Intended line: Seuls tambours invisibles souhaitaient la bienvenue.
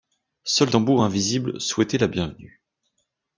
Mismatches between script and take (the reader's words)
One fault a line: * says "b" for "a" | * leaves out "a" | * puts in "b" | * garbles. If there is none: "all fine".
all fine